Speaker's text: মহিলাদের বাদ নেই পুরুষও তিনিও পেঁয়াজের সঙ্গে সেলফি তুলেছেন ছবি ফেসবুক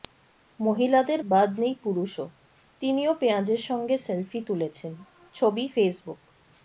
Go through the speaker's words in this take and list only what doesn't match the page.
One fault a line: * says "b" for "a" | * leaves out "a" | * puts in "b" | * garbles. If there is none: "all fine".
all fine